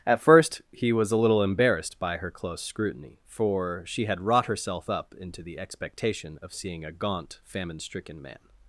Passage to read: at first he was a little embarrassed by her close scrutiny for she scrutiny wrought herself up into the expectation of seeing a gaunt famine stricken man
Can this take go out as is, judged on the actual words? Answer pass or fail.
fail